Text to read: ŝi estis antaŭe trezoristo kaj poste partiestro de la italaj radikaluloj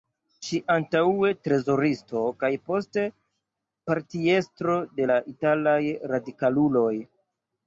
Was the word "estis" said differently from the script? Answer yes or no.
yes